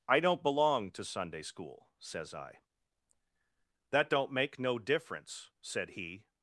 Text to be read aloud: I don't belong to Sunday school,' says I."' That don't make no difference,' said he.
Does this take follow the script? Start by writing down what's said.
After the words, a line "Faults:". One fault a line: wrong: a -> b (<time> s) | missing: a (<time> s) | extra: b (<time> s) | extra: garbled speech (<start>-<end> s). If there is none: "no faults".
I don't belong to Sunday school,' says I."' That don't make no difference,' said he.
Faults:
no faults